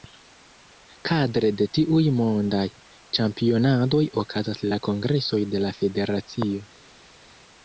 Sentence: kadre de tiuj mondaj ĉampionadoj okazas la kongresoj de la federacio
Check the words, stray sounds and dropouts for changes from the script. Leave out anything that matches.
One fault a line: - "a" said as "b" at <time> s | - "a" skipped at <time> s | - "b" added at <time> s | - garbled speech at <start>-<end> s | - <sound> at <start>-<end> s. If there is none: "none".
none